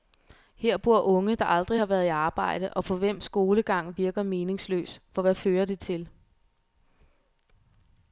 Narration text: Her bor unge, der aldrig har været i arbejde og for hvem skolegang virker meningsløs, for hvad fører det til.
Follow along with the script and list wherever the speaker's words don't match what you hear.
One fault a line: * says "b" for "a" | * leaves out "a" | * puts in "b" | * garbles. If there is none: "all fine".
all fine